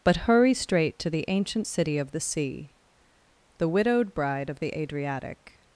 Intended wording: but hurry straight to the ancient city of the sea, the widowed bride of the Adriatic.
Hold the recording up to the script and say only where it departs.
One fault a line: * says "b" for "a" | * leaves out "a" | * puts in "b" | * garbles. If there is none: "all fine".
all fine